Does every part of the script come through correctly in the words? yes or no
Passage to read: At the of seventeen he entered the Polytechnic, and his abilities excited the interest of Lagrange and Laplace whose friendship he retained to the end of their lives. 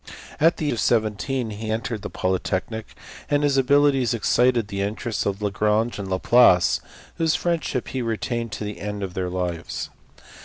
yes